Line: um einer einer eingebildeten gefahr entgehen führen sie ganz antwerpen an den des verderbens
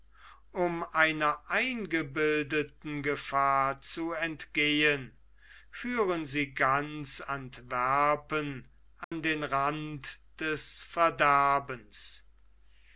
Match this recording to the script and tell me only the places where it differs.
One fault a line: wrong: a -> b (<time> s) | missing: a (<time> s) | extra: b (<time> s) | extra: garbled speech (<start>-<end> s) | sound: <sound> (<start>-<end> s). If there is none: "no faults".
missing: einer (1.4 s)
extra: zu (3.8 s)
sound: dropout (9.0-9.1 s)
extra: rand (9.4 s)